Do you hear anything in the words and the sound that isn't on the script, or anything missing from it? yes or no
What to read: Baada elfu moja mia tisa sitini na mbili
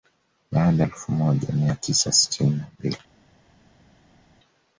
no